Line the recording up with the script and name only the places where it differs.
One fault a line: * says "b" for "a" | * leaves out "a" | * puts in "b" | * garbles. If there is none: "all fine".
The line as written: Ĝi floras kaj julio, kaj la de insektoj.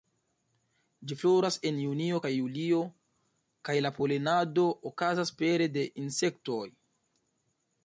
* puts in "en junio"
* puts in "polenado okazas pere"